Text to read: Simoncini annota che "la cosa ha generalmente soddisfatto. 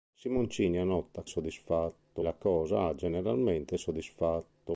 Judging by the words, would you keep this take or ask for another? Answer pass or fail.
fail